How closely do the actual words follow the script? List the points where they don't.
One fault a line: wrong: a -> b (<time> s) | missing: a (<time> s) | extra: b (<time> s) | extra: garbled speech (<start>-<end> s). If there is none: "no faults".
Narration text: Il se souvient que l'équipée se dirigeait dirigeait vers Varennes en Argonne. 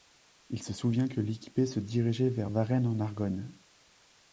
missing: dirigeait (2.3 s)